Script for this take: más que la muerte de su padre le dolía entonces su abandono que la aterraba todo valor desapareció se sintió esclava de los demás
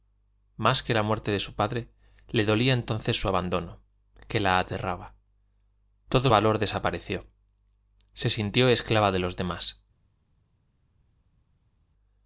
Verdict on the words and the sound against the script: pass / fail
pass